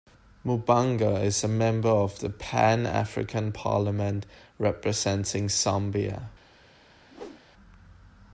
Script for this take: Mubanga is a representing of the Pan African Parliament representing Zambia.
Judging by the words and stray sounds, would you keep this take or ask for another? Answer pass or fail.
fail